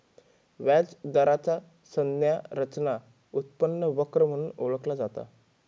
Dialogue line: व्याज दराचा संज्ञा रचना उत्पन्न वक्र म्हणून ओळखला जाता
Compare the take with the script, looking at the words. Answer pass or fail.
pass